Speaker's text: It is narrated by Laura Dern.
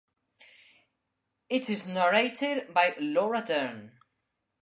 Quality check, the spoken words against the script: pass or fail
pass